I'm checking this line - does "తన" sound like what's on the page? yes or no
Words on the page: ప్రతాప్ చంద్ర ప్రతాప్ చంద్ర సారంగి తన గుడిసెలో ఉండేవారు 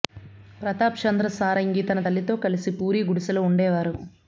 no